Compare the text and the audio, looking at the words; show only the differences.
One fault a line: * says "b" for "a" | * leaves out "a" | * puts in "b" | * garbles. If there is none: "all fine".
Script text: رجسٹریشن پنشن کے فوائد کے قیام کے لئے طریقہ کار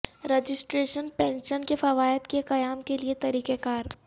all fine